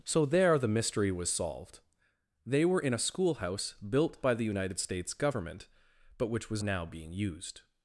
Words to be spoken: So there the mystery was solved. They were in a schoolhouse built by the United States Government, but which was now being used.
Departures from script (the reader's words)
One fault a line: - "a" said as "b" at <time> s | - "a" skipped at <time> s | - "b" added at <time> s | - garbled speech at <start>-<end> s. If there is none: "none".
none